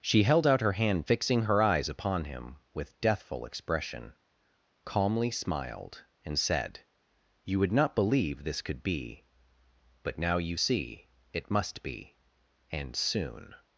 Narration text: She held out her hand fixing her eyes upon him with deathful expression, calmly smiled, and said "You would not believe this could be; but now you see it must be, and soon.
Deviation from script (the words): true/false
false